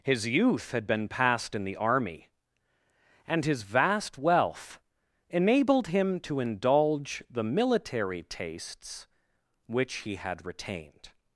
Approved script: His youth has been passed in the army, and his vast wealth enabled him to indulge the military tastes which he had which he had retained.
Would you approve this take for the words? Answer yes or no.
no